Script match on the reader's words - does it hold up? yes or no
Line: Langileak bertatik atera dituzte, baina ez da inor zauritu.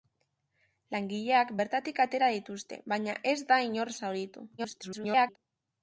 no